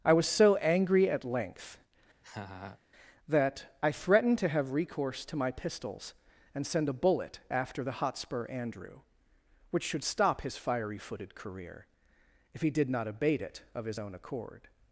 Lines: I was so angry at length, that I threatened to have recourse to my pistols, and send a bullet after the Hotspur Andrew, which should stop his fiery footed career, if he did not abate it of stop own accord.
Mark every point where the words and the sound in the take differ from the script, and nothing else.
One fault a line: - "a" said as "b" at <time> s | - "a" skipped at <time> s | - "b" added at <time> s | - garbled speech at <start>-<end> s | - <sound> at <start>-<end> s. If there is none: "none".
- laugh at 2.2-2.8 s
- "stop" said as "his" at 13.8 s